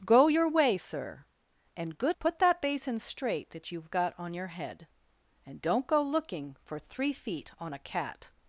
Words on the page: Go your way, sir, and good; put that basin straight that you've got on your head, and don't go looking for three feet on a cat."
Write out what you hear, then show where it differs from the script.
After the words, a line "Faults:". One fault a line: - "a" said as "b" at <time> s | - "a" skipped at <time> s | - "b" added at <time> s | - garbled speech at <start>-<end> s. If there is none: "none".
Go your way, sir, and good; put that basin straight that you've got on your head, and don't go looking for three feet on a cat."
Faults:
none